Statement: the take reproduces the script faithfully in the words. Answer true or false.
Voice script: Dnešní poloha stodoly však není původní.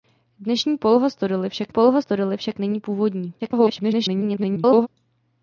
false